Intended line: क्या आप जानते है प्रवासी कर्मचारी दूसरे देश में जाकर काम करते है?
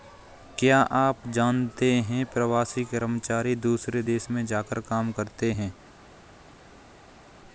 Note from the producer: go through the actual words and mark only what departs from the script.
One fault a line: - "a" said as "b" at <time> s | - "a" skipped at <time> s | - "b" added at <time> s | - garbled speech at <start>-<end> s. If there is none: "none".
none